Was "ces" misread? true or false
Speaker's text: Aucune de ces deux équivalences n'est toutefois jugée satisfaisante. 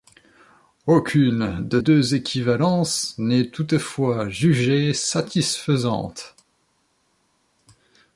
true